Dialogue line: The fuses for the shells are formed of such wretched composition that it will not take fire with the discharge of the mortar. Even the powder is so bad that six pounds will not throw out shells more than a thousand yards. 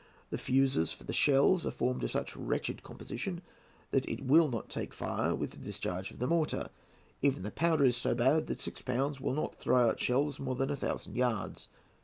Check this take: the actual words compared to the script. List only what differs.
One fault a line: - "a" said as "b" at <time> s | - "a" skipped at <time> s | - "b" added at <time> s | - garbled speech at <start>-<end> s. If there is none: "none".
none